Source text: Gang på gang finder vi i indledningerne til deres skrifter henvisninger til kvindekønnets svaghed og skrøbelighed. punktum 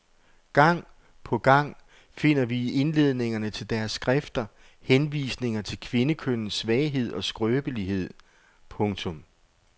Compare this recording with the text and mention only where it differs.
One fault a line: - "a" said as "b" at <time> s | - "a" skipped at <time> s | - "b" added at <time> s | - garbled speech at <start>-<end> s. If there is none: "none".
none